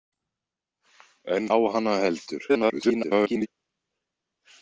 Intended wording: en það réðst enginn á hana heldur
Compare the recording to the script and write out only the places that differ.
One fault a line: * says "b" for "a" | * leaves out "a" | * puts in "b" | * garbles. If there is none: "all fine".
* leaves out "það réðst enginn"
* garbles